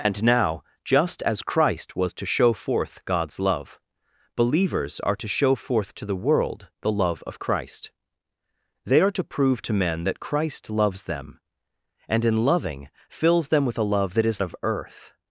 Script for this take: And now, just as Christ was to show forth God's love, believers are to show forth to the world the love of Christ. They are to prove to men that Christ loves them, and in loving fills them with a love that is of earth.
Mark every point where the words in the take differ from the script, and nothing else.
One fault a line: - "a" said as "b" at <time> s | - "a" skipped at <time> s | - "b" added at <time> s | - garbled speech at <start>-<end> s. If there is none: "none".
none